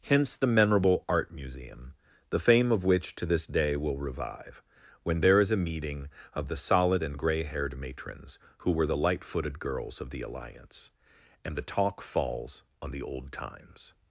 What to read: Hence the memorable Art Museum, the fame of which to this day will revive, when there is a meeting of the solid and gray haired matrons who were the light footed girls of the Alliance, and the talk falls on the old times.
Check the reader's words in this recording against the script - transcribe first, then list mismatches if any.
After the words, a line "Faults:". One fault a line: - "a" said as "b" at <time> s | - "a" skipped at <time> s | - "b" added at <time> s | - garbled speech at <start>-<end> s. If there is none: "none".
Hence the memorable Art Museum, the fame of which to this day will revive, when there is a meeting of the solid and gray haired matrons who were the light footed girls of the Alliance, and the talk falls on the old times.
Faults:
none